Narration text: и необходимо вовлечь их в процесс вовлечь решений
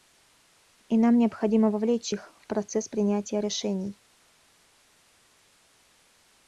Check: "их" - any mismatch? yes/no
no